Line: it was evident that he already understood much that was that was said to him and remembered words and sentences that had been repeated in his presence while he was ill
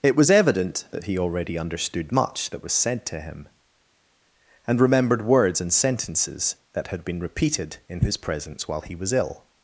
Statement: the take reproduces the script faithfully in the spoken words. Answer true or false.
false